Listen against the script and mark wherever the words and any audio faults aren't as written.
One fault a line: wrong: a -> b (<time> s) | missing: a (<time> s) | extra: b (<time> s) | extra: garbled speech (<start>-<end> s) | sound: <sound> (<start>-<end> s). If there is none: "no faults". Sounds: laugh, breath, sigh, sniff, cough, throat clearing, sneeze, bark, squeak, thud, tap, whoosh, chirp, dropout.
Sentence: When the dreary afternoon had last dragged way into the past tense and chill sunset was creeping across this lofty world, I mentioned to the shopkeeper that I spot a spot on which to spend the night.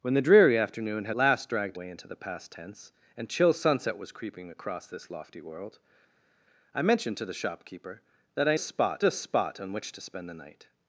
no faults